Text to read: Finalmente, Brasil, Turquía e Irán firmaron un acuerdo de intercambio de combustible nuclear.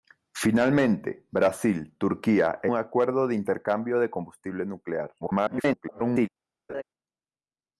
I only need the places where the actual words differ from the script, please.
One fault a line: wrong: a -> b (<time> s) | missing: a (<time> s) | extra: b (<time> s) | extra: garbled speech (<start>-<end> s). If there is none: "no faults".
missing: Irán firmaron (2.7 s)
extra: garbled speech (5.2-6.3 s)